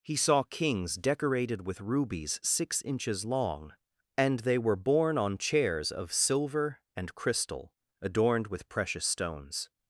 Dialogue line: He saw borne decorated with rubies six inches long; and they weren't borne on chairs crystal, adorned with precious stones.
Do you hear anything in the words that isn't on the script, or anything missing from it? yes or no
yes